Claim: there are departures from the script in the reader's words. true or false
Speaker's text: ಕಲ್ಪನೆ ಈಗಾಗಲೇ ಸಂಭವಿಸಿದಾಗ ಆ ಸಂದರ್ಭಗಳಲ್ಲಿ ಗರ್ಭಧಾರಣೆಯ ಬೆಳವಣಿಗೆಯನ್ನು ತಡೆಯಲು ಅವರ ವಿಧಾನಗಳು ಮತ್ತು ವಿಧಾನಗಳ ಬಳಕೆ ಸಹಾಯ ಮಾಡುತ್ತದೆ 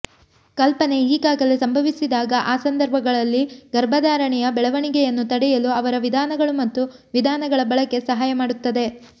false